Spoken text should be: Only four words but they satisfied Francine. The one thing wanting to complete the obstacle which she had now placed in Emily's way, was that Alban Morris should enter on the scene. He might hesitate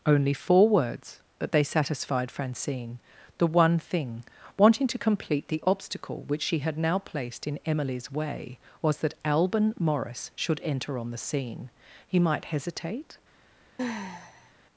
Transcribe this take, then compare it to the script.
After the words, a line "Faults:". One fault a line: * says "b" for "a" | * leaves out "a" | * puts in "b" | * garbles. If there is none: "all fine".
Only four words but they satisfied Francine. The one thing wanting to complete the obstacle which she had now placed in Emily's way, was that Alban Morris should enter on the scene. He might hesitate
Faults:
all fine